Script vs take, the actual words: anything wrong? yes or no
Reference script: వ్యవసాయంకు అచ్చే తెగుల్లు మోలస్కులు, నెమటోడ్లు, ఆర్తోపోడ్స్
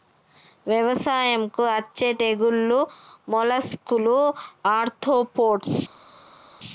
yes